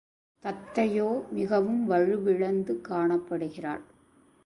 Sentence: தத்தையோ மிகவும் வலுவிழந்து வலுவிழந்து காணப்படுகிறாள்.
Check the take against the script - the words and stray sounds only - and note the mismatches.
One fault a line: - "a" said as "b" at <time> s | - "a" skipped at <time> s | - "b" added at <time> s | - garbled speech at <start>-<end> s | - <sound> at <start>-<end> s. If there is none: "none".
- "வலுவிழந்து" skipped at 2.8 s